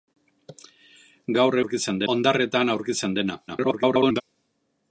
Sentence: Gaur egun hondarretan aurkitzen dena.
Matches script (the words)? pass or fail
fail